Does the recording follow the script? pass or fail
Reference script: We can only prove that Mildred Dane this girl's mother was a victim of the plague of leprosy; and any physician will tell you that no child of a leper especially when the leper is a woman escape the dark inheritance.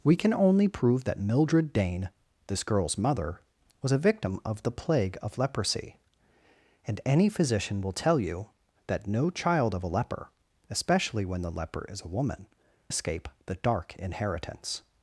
pass